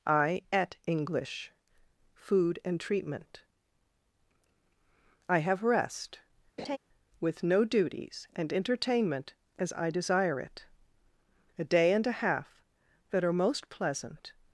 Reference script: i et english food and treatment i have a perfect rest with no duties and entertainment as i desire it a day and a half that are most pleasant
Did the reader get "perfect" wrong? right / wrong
wrong